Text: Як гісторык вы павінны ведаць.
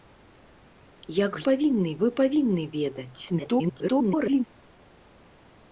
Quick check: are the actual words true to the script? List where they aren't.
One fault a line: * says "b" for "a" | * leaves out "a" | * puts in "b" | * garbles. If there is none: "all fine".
* says "павінны" for "гісторык"
* garbles